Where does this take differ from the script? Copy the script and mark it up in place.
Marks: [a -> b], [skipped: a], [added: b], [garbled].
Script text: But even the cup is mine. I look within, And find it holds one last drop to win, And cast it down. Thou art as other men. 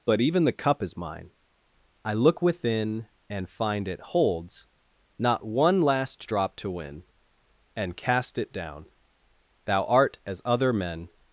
But even the cup is mine. I look within, And find it holds [added: not] one last drop to win, And cast it down. Thou art as other men.